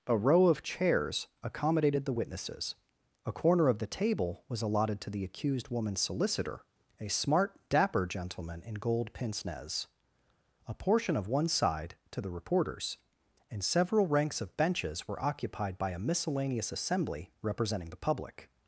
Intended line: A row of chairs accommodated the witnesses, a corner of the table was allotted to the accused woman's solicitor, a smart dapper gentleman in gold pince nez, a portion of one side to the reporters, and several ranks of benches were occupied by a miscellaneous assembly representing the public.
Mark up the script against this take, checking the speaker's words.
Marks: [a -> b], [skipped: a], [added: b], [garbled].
A row of chairs accommodated the witnesses, a corner of the table was allotted to the accused woman's solicitor, a smart dapper gentleman in gold pince nez, a portion of one side to the reporters, and several ranks of benches were occupied by a miscellaneous assembly representing the public.